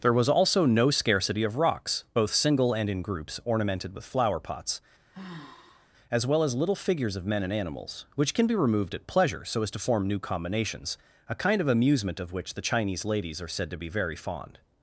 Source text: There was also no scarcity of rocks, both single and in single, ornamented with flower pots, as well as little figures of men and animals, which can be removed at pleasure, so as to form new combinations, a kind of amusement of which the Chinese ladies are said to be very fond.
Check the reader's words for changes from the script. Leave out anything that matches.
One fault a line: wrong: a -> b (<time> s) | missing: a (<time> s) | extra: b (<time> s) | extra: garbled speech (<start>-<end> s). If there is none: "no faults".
wrong: single -> groups (3.0 s)